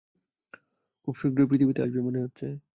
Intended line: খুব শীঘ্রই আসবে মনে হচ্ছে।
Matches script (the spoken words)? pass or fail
fail